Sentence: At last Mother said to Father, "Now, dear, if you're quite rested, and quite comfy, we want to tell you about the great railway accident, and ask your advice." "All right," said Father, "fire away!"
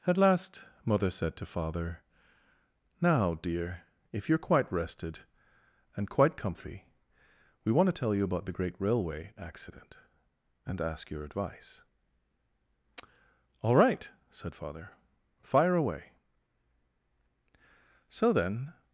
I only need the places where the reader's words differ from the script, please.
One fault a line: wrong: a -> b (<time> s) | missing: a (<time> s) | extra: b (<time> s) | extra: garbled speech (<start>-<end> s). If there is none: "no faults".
extra: So then (18.1 s)